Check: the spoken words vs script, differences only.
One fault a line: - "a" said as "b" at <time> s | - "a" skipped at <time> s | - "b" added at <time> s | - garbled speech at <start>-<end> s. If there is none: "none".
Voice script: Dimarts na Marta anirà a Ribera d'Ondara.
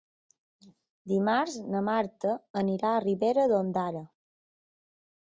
none